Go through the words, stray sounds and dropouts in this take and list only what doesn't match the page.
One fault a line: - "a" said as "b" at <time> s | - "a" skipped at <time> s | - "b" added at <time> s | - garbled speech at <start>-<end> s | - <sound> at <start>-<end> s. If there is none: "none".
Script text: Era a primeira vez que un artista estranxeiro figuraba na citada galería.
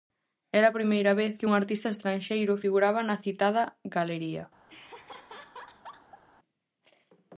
- laugh at 4.7-6.2 s